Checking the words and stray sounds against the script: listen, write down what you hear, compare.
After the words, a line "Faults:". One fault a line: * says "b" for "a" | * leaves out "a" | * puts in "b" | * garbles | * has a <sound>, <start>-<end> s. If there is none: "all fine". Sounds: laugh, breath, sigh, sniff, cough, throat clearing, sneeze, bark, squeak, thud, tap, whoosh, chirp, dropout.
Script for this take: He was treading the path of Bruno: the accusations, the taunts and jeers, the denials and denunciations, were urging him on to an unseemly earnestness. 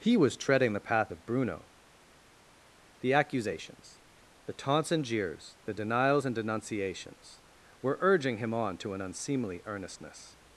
He was treading the path of Bruno: the accusations, the taunts and jeers, the denials and denunciations, were urging him on to an unseemly earnestness.
Faults:
all fine